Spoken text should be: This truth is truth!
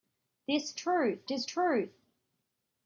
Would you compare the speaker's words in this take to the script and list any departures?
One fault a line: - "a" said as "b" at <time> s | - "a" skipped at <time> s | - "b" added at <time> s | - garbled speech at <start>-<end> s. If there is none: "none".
none